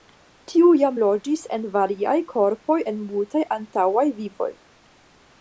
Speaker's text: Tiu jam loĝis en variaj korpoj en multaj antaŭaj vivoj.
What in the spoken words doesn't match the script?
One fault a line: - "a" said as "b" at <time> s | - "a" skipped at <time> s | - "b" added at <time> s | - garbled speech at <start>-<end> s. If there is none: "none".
none